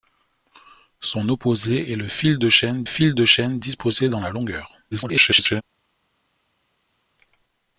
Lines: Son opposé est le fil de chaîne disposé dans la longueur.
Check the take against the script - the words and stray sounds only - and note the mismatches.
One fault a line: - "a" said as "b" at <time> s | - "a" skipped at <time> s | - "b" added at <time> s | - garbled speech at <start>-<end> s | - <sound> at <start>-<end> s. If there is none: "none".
- "fil de chaîne" added at 2.8 s
- garbled speech at 4.9-5.6 s